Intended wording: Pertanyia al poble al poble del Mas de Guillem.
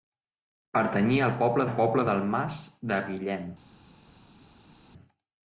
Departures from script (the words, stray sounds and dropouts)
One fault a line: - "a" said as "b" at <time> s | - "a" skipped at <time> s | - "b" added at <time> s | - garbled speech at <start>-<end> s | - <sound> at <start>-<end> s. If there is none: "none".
none